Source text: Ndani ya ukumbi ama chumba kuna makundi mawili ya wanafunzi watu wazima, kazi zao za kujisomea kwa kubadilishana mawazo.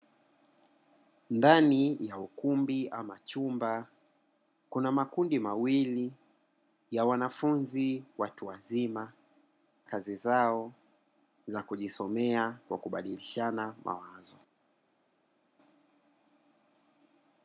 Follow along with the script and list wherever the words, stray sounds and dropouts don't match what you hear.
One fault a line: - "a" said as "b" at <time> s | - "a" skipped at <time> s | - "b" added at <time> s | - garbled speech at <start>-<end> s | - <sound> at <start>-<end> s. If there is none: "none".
none